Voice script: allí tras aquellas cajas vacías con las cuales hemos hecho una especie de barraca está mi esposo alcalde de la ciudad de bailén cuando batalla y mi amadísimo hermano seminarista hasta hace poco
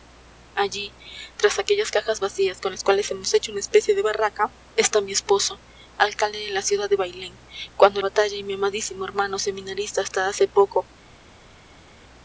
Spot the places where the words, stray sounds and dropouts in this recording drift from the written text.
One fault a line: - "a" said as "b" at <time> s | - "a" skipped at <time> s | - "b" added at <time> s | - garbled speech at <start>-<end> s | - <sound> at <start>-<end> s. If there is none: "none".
none